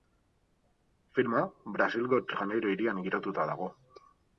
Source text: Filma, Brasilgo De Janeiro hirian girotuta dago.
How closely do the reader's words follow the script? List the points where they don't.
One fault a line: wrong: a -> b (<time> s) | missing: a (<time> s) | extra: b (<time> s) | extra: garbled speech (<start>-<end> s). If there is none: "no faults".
no faults